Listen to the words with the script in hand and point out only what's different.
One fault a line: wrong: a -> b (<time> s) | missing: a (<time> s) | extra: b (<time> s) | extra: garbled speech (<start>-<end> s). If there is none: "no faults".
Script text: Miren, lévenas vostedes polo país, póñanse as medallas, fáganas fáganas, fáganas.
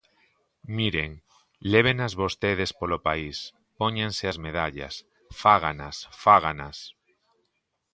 missing: fáganas (6.8 s)